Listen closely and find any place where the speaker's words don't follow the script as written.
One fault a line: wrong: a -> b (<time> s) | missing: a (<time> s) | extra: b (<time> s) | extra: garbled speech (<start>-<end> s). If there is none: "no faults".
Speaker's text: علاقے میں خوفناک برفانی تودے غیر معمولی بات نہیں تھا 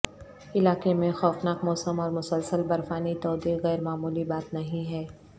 extra: موسم اور مسلسل (1.6 s)
wrong: تھا -> ہے (4.9 s)